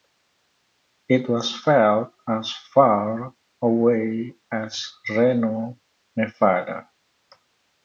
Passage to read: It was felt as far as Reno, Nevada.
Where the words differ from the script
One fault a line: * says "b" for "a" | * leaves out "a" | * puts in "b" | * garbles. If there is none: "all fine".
* puts in "away"